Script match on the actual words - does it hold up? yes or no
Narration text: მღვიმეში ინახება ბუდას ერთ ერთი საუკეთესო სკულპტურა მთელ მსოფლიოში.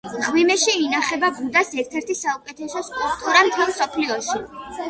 yes